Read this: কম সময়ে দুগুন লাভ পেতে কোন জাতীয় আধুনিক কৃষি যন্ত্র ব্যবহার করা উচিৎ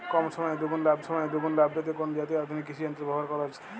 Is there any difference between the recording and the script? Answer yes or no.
yes